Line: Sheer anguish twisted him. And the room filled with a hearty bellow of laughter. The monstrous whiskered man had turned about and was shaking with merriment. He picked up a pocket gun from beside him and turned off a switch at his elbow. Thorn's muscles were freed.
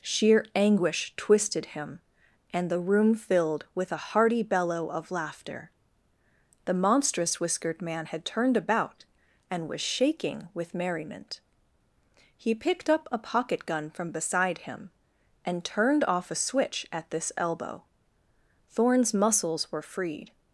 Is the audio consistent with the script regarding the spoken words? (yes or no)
no